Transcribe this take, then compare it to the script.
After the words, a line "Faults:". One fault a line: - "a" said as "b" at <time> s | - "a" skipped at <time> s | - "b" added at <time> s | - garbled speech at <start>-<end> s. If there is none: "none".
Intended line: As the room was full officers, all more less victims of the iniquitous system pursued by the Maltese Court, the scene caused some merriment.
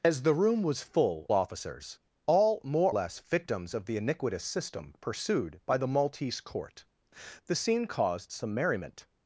As the room was full officers, all more less victims of the iniquitous system pursued by the Maltese Court, the scene caused some merriment.
Faults:
none